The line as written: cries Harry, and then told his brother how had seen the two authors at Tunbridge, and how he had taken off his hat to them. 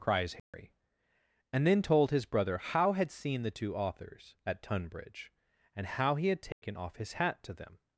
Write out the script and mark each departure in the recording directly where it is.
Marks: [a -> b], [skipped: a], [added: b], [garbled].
cries Harry, and then told his brother how had seen the two authors at Tunbridge, and how he had taken off his hat to them.